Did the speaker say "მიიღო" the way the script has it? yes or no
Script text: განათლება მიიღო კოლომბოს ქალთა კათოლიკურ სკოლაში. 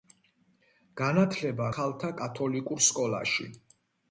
no